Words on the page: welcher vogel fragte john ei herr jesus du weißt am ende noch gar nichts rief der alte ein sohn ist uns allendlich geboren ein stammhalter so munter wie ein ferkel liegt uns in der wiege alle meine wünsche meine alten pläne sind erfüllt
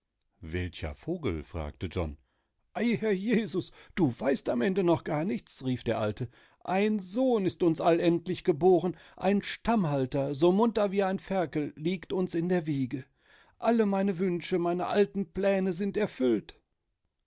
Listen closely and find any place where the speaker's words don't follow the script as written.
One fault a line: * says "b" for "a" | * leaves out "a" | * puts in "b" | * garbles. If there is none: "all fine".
all fine